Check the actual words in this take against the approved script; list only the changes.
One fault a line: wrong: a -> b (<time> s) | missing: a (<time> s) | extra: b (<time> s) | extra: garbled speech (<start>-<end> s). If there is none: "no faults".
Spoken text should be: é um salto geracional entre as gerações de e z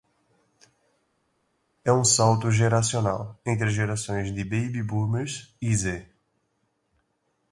extra: baby boomers (4.4 s)